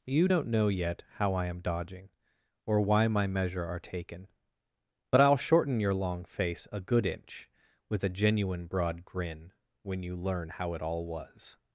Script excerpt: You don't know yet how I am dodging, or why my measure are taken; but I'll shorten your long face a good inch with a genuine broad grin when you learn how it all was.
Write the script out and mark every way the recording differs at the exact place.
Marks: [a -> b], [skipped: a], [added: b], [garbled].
You don't know yet how I am dodging, or why my measure are taken; but I'll shorten your long face a good inch with a genuine broad grin when you learn how it all was.